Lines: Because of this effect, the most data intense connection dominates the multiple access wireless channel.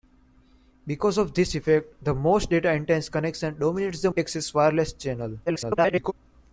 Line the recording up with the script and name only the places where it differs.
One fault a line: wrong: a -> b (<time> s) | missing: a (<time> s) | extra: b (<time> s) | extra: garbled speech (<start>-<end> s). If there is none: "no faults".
missing: multiple (4.1 s)
extra: garbled speech (5.5-6.1 s)